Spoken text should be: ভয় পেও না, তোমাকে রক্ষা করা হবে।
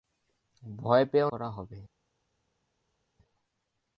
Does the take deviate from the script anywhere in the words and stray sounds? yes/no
yes